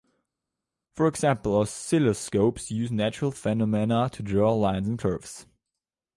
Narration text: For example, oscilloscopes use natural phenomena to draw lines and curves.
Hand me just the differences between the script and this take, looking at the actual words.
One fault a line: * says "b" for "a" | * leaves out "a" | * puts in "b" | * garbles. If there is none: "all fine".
all fine